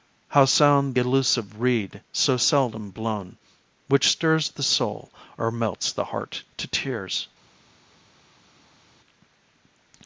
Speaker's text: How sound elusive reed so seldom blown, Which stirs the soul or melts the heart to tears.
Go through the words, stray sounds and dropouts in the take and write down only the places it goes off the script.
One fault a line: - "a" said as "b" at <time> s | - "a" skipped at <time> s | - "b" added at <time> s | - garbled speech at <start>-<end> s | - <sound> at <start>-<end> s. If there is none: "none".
none